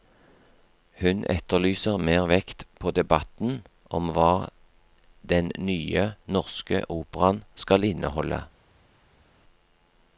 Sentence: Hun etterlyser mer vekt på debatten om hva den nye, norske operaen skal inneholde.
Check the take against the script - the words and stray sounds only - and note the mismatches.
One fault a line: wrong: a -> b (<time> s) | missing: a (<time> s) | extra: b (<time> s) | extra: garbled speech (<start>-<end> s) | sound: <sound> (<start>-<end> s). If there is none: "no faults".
no faults